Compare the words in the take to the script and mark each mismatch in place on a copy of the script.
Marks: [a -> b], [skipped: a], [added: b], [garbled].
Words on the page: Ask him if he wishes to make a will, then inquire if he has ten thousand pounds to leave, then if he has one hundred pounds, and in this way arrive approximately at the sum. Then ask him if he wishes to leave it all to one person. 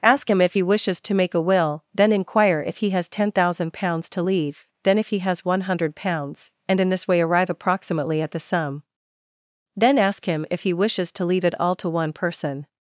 Ask him if he wishes to make a will, then inquire if he has ten thousand pounds to leave, then if he has one hundred pounds, and in this way arrive approximately at the sum. Then ask him if he wishes to leave it all to one person.